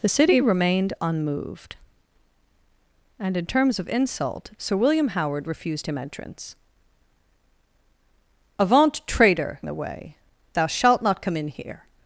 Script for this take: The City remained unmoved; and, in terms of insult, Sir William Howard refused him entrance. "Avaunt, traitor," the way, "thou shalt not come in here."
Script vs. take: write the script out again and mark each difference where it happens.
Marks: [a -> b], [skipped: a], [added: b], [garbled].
The City remained unmoved; and, in terms of insult, Sir William Howard refused him entrance. "Avaunt, traitor," the way, "thou shalt not come in here."